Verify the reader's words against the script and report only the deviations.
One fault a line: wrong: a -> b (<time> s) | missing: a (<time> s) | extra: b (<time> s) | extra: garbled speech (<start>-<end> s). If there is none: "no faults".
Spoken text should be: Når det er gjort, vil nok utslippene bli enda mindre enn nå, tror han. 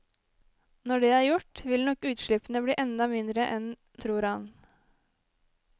missing: nå (3.7 s)